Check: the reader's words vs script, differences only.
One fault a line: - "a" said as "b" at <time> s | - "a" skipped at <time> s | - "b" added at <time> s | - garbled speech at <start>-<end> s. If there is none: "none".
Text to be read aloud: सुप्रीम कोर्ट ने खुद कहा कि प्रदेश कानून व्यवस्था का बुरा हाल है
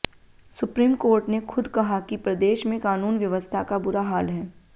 - "में" added at 2.7 s